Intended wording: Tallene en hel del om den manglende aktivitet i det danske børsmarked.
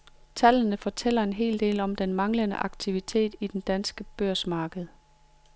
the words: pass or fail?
fail